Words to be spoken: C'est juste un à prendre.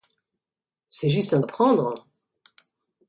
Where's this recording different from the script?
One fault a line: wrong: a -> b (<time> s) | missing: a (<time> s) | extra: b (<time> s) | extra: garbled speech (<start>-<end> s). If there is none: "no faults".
no faults